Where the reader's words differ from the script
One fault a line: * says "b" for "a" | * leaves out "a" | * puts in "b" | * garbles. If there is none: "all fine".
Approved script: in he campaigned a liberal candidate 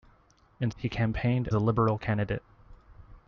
all fine